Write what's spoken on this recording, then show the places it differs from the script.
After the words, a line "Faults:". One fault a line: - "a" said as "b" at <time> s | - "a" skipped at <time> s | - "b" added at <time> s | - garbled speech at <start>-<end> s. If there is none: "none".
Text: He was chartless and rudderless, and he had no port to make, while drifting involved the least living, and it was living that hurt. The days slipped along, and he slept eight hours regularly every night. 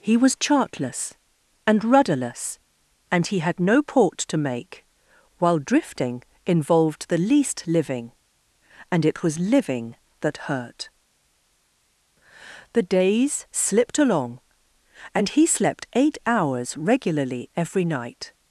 He was chartless and rudderless, and he had no port to make, while drifting involved the least living, and it was living that hurt. The days slipped along, and he slept eight hours regularly every night.
Faults:
none